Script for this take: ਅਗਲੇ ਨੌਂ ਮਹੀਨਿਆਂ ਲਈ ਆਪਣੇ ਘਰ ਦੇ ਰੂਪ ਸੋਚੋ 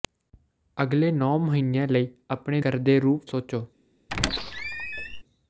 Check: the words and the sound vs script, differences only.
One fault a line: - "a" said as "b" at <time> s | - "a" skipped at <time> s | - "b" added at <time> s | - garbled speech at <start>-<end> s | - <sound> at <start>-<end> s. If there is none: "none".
- squeak at 4.1-5.2 s